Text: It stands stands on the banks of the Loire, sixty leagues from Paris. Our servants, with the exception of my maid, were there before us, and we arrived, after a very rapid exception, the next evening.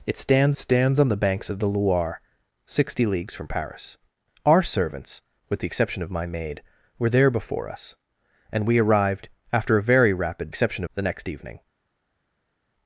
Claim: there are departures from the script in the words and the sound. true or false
false